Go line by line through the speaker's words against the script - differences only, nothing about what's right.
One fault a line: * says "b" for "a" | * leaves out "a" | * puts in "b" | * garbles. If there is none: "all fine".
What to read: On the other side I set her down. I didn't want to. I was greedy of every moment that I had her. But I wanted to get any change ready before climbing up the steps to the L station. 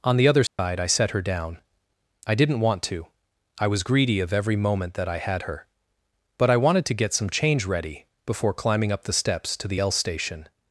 * says "some" for "any"